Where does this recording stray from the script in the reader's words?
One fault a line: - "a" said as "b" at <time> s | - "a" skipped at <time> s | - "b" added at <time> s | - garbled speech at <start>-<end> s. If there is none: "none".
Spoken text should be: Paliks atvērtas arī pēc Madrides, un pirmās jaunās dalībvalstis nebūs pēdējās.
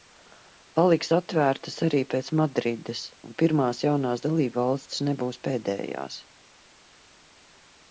none